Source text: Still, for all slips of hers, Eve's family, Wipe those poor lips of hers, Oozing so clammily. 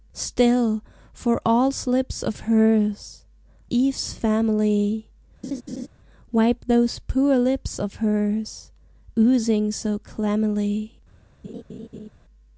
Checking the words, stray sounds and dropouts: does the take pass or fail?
fail